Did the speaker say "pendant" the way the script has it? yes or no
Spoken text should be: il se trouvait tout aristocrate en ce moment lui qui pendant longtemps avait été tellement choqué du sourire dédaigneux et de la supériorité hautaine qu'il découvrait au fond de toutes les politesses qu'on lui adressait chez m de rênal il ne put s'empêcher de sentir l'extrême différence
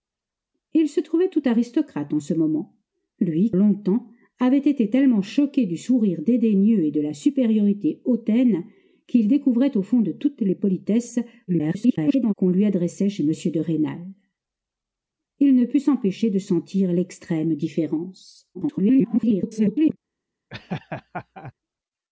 no